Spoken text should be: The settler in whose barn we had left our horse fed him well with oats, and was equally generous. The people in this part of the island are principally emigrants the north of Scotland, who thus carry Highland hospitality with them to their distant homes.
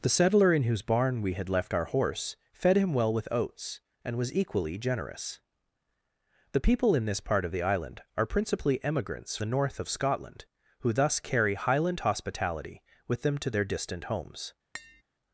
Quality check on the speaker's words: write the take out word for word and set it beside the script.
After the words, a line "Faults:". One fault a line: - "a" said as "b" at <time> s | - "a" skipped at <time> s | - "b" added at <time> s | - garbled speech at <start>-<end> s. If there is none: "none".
The settler in whose barn we had left our horse fed him well with oats, and was equally generous. The people in this part of the island are principally emigrants the north of Scotland, who thus carry Highland hospitality with them to their distant homes.
Faults:
none